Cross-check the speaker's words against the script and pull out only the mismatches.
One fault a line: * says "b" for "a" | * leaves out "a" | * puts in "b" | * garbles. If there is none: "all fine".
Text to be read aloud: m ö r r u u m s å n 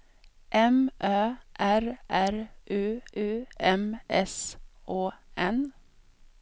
all fine